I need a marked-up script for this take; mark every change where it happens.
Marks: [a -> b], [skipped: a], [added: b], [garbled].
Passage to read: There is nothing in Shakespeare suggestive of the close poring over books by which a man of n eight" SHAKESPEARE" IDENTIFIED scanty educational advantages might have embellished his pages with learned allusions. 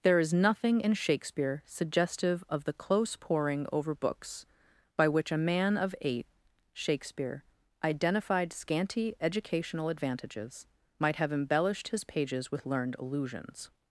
There is nothing in Shakespeare suggestive of the close poring over books by which a man of [skipped: n] eight" SHAKESPEARE" IDENTIFIED scanty educational advantages might have embellished his pages with learned allusions.